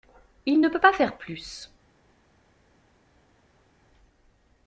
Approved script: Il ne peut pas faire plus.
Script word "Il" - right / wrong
right